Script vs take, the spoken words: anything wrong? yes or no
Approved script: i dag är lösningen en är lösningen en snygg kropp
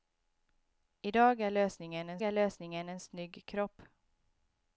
no